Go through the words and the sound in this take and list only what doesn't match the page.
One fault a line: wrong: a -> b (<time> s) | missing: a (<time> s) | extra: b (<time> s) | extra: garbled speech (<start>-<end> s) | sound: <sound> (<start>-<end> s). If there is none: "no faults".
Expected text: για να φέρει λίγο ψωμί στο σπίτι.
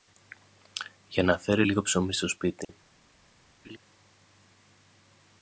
sound: dropout (2.6-2.7 s)
sound: laugh (3.6-3.8 s)